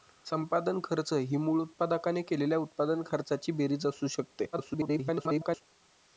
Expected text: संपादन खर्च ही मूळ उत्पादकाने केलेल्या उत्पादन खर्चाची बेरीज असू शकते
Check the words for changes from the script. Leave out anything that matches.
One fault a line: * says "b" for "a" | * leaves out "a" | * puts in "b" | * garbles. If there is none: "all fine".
* garbles